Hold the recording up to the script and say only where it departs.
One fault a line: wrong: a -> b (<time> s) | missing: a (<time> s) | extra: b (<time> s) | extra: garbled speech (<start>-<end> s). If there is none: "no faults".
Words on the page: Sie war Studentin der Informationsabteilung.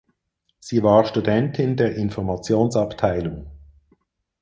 no faults